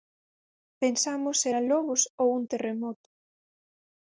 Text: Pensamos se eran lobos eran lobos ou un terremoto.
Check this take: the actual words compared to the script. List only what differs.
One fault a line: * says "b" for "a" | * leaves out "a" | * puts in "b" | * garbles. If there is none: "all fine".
* leaves out "eran lobos"